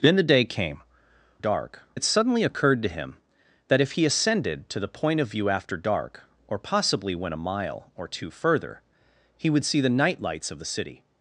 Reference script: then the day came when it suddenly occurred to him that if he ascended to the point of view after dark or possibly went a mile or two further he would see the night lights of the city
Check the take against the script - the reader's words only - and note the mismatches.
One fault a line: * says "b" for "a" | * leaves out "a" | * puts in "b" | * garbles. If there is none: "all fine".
* says "dark" for "when"